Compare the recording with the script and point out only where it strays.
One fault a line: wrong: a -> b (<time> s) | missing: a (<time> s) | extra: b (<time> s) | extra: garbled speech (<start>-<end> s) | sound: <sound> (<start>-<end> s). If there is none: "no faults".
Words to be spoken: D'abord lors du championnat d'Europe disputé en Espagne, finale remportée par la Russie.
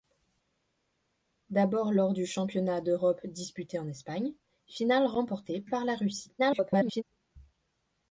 extra: garbled speech (6.4-7.0 s)